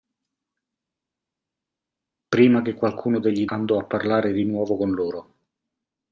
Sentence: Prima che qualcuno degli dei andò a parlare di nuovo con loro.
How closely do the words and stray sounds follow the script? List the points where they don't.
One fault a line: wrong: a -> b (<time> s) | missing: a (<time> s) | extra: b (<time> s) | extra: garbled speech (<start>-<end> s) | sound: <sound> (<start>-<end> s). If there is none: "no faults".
missing: dei (3.5 s)